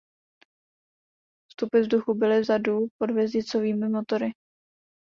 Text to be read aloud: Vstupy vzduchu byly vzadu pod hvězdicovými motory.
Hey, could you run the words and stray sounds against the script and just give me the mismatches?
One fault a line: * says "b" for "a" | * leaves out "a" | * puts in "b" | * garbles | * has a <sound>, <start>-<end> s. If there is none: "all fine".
all fine